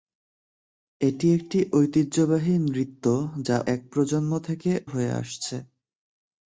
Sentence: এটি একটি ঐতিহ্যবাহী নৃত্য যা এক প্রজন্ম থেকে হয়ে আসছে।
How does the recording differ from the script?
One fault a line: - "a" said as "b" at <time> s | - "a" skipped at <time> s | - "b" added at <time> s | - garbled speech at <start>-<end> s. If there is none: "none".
none